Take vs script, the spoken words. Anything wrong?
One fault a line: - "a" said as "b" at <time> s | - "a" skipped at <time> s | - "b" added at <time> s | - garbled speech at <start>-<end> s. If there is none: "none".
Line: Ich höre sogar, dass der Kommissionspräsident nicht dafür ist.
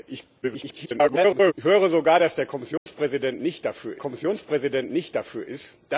- garbled speech at 0.4-1.5 s
- "Kommissionspräsident nicht dafür" added at 4.0 s